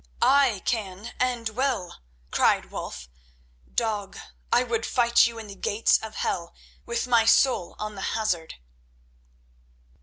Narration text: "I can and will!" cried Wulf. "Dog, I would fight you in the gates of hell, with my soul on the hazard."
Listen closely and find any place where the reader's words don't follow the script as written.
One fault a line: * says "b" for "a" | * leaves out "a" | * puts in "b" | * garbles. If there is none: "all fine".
all fine